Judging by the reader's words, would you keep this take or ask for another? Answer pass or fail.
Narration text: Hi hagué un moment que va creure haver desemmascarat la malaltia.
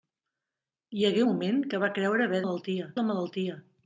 fail